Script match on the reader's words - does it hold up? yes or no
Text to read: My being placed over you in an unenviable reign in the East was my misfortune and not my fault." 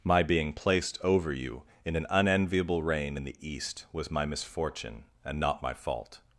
yes